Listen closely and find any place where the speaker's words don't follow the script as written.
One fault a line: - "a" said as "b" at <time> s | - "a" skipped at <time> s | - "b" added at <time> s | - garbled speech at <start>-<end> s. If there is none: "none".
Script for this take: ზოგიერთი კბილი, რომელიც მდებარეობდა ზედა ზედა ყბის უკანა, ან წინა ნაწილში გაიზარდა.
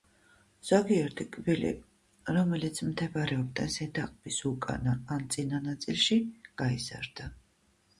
- "ზედა" skipped at 4.1 s